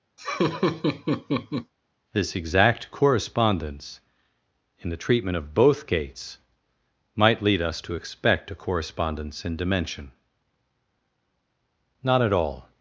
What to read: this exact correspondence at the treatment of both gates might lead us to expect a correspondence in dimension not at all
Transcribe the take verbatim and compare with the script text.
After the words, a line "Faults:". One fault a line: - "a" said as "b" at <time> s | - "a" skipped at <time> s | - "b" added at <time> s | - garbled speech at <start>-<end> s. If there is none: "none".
this exact correspondence in the treatment of both gates might lead us to expect a correspondence in dimension not at all
Faults:
- "at" said as "in" at 4.8 s